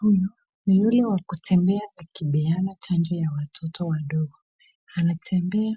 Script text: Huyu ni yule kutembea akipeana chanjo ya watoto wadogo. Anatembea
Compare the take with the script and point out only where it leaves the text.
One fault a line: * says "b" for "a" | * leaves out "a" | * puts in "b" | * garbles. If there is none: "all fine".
* puts in "wa"